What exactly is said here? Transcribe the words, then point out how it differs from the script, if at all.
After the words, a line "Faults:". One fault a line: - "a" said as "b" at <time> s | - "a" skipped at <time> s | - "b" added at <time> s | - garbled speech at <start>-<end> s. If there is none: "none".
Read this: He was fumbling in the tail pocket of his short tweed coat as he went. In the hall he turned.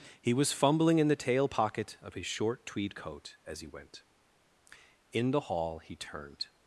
He was fumbling in the tail pocket of his short tweed coat as he went. In the hall he turned.
Faults:
none